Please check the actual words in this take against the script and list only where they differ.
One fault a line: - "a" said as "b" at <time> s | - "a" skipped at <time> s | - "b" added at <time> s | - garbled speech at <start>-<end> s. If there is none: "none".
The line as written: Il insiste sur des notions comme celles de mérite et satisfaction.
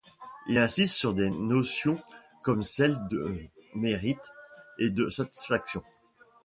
- "de" added at 4.9 s